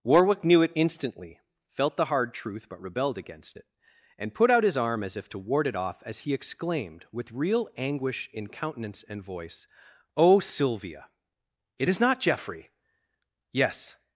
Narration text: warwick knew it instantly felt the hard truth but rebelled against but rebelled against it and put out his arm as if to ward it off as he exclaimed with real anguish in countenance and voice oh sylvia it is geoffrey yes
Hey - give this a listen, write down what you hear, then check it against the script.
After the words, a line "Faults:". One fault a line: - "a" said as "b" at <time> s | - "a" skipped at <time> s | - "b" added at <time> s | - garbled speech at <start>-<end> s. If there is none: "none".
warwick knew it instantly felt the hard truth but rebelled against it and put out his arm as if to ward it off as he exclaimed with real anguish in countenance and voice oh sylvia it is not geoffrey yes
Faults:
- "but rebelled against" skipped at 3.6 s
- "not" added at 12.0 s